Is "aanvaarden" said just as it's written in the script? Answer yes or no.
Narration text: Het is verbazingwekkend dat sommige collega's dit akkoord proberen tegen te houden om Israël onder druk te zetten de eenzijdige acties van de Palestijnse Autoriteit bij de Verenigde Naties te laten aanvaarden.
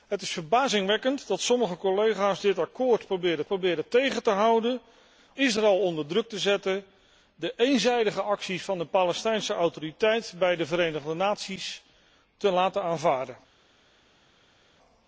yes